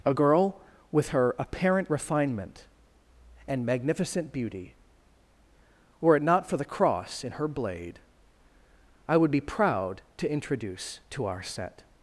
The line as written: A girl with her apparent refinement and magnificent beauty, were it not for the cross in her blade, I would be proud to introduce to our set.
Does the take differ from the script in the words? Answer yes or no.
no